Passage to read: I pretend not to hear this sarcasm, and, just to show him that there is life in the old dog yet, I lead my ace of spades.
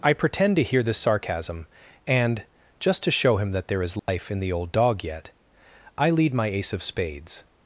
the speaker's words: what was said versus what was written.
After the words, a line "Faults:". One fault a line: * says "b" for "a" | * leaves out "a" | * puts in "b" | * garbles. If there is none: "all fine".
I pretend to hear this sarcasm, and, just to show him that there is life in the old dog yet, I lead my ace of spades.
Faults:
* leaves out "not"